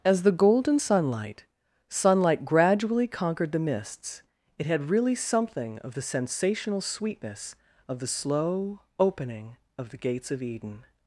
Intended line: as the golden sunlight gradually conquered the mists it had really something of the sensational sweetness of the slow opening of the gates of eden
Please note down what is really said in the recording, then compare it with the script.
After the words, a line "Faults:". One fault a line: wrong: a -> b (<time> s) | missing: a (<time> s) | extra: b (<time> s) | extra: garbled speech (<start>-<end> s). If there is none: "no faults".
as the golden sunlight sunlight gradually conquered the mists it had really something of the sensational sweetness of the slow opening of the gates of eden
Faults:
extra: sunlight (1.9 s)